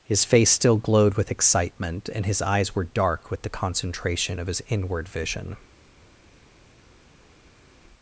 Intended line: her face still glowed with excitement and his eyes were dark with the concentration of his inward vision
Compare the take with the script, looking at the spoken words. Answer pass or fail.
fail